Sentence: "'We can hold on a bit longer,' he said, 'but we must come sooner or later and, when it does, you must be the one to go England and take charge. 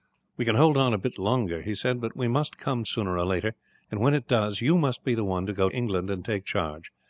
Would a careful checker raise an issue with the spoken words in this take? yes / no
no